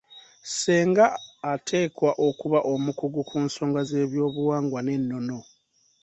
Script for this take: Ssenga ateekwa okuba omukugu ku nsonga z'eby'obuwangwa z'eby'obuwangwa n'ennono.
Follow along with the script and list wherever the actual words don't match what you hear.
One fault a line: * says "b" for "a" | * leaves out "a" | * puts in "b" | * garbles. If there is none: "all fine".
* leaves out "z'eby'obuwangwa"